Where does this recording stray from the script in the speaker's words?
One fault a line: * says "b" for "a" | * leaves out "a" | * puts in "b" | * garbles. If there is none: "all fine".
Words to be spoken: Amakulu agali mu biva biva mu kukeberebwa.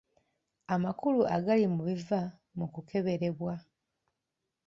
* leaves out "biva"